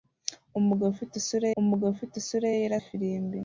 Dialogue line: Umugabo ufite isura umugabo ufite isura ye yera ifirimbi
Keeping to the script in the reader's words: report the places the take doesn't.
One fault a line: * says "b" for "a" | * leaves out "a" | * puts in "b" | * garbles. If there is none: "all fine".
all fine